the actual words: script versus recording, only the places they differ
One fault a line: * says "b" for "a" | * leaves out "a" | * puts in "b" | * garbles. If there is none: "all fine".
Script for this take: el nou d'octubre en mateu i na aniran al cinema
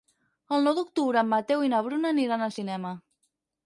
* puts in "bruna"